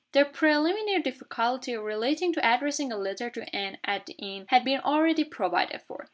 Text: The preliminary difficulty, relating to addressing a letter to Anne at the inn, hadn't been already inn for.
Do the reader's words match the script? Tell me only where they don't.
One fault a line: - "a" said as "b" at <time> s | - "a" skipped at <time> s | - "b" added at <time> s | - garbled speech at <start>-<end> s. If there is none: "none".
- "hadn't" said as "had" at 4.5 s
- "inn" said as "provided" at 5.3 s